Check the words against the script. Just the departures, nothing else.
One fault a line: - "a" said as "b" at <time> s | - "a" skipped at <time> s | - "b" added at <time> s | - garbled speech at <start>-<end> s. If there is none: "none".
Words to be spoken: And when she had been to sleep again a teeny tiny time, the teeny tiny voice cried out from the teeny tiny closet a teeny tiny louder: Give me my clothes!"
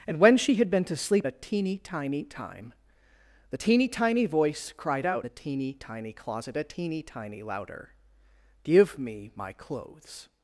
- "again" skipped at 1.3 s
- "from" skipped at 5.3 s